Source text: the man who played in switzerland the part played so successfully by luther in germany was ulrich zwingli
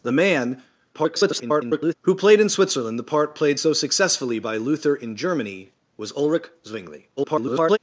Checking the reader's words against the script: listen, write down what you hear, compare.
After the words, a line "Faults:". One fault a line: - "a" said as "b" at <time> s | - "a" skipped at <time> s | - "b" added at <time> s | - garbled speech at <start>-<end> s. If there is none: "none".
the man [garbled] who played in switzerland the part played so successfully by luther in germany was ulrich zwingli [garbled]
Faults:
- garbled speech at 0.9-1.9 s
- garbled speech at 7.2-7.8 s